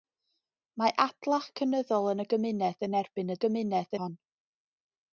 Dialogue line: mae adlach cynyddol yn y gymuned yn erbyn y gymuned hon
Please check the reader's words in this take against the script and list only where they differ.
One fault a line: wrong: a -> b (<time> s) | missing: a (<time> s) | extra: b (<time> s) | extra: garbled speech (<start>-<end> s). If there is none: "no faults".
no faults